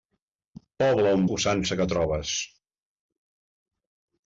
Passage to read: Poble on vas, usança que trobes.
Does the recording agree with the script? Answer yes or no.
no